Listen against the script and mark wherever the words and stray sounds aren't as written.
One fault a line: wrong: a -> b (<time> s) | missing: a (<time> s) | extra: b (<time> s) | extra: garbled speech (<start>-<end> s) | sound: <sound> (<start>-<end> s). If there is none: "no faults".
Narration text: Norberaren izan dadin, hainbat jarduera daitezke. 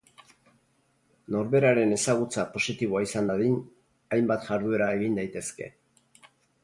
extra: ezagutza positiboa (2.0 s)
extra: egin (5.0 s)